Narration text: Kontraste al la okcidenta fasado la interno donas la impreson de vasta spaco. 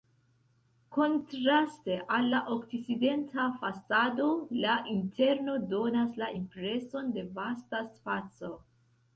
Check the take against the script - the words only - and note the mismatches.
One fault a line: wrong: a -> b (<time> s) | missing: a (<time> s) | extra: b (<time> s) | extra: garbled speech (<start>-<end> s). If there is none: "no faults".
no faults